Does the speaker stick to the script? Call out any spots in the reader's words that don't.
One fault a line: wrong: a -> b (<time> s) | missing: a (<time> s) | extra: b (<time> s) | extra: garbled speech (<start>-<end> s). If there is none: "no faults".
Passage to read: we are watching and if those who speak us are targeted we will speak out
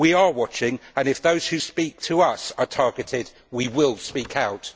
extra: to (2.0 s)